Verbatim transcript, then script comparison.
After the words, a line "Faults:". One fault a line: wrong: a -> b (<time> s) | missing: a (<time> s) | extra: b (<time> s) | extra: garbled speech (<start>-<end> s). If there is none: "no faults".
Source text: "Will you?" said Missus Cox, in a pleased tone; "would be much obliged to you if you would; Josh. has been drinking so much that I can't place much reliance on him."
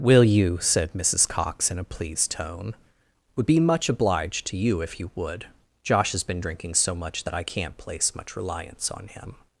"Will you?" said Missus Cox, in a pleased tone; "would be much obliged to you if you would; Josh. has been drinking so much that I can't place much reliance on him."
Faults:
no faults